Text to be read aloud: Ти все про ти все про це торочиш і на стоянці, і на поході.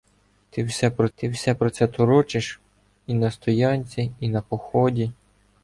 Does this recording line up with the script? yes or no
yes